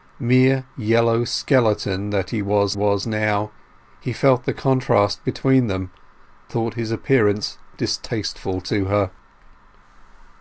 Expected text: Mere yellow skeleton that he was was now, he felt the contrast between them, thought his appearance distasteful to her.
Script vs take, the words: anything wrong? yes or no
no